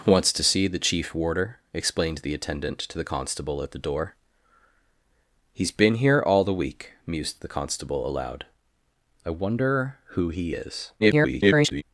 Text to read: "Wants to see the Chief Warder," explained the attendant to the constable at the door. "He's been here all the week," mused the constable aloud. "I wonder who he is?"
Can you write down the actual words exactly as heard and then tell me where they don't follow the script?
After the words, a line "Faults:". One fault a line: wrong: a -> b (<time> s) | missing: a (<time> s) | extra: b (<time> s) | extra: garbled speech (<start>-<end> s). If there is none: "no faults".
"Wants to see the Chief Warder," explained the attendant to the constable at the door. "He's been here all the week," mused the constable aloud. "I wonder who he is?" [garbled]
Faults:
extra: garbled speech (11.0-11.8 s)